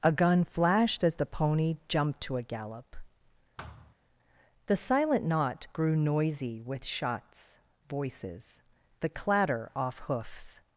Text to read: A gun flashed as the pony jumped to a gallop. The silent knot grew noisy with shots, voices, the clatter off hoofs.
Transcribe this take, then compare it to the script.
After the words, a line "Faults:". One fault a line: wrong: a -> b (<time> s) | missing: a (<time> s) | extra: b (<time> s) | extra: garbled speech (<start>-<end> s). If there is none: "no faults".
A gun flashed as the pony jumped to a gallop. The silent knot grew noisy with shots, voices, the clatter off hoofs.
Faults:
no faults